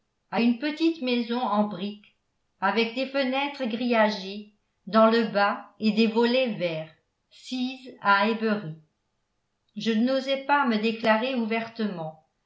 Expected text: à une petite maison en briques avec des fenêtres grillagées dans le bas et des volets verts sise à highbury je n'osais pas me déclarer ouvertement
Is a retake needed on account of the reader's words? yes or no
no